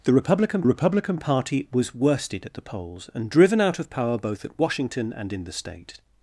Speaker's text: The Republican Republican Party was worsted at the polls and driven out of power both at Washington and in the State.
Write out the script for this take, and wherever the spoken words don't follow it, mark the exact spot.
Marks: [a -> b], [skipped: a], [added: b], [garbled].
The Republican Republican Party was worsted at the polls and driven out of power both at Washington and in the State.